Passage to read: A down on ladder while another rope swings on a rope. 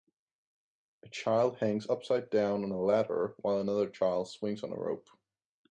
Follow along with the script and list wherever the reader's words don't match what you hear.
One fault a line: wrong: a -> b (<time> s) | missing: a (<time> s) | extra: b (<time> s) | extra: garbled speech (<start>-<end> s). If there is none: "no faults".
extra: child hangs upside (1.1 s)
extra: a (2.7 s)
wrong: rope -> child (3.9 s)